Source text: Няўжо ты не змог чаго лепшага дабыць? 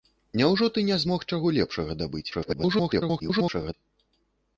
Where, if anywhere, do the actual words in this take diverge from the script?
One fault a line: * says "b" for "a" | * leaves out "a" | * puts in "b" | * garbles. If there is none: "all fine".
* garbles